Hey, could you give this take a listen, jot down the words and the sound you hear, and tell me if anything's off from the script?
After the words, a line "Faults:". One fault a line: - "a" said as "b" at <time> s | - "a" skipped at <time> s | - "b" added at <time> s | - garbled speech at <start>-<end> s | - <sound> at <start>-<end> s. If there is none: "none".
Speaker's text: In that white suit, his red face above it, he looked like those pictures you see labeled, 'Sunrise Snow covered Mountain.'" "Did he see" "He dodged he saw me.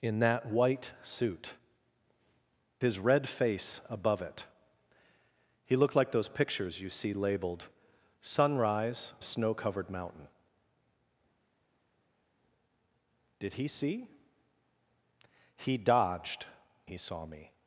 In that white suit, his red face above it, he looked like those pictures you see labeled, 'Sunrise Snow covered Mountain.'" "Did he see" "He dodged he saw me.
Faults:
none